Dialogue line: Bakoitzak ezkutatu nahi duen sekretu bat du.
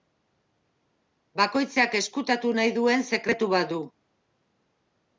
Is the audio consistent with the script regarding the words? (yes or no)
yes